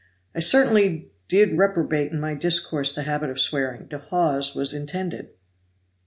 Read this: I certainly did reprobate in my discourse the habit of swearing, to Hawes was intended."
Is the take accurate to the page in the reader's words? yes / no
yes